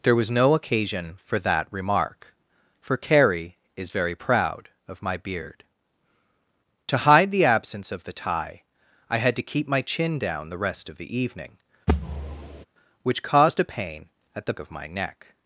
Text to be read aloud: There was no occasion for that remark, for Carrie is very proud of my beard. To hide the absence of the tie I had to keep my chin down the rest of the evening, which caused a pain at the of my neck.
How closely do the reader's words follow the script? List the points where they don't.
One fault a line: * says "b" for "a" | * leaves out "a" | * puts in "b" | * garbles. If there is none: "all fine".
all fine